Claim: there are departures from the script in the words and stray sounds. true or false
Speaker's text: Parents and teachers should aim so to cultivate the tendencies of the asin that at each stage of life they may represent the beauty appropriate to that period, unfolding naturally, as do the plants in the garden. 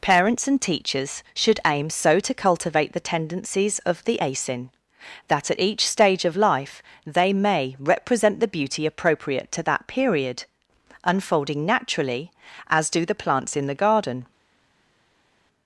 false